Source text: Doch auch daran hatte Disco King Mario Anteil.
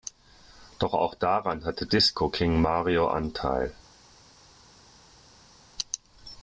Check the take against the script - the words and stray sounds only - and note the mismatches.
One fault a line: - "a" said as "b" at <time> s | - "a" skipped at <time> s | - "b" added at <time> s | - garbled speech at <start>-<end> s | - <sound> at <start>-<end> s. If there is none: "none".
none